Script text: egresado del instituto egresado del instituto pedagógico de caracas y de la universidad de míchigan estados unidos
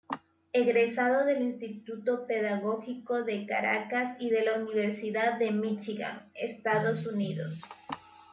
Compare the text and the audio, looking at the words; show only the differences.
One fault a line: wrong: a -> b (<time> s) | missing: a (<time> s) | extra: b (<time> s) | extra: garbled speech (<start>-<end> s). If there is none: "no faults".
missing: egresado del instituto (2.2 s)